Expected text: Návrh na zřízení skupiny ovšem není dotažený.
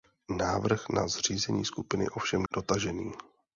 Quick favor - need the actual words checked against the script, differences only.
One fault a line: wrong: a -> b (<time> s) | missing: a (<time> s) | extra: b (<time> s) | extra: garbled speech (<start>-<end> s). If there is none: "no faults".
missing: není (2.4 s)